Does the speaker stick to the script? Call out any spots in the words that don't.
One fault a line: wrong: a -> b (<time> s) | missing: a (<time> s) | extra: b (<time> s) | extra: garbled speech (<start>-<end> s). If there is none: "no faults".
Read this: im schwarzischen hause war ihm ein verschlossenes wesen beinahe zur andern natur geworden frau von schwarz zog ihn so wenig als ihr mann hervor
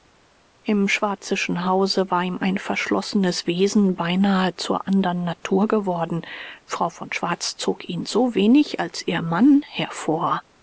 no faults